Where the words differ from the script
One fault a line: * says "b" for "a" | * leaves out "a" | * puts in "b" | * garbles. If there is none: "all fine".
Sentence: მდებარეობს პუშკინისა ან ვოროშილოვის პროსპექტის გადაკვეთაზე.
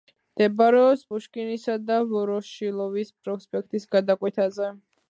* says "და" for "ან"